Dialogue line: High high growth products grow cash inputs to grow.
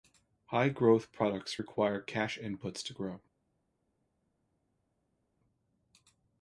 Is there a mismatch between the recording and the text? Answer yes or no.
yes